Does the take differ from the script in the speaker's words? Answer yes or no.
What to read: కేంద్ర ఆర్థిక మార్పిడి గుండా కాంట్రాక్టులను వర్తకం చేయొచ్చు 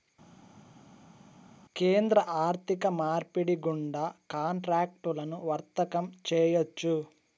no